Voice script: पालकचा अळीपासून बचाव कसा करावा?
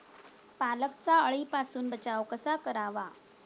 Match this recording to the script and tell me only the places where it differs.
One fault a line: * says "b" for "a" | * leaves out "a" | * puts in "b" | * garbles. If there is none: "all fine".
all fine